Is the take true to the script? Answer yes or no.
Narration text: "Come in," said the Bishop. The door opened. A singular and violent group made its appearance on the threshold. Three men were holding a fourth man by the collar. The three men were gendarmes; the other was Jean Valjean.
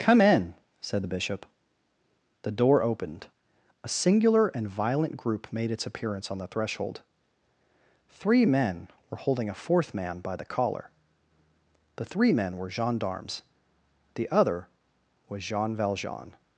yes